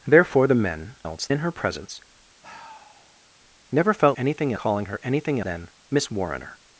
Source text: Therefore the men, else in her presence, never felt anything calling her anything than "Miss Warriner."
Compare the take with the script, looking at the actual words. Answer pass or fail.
pass